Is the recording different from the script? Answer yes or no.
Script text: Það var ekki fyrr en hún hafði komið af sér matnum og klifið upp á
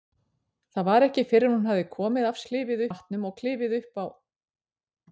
yes